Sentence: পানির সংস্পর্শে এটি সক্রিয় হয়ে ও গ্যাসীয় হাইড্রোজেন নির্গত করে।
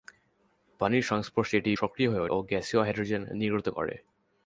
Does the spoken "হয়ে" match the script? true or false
true